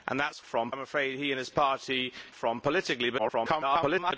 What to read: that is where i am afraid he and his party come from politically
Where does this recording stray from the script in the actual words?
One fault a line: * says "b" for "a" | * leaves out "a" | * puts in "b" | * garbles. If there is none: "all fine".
* says "from" for "where"
* leaves out "come"
* garbles